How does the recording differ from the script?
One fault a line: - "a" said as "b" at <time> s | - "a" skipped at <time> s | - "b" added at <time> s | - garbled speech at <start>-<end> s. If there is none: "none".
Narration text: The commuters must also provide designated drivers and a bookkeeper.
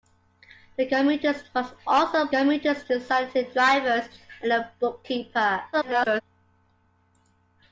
- "provide" said as "commuters" at 2.3 s
- garbled speech at 5.7-6.2 s